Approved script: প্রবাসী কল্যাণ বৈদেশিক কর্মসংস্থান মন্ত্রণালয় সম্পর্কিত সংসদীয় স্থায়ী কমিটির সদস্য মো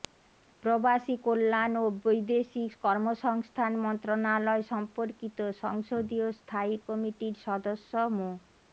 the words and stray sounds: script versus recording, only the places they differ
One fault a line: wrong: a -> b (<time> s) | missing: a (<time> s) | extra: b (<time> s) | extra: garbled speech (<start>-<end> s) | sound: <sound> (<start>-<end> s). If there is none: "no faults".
extra: ও (1.8 s)